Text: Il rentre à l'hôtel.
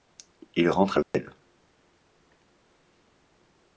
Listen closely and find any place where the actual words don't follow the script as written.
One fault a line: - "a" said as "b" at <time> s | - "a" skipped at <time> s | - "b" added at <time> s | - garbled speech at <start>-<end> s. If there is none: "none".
none